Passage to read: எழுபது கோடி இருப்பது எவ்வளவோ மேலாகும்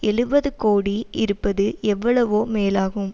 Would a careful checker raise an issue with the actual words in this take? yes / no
no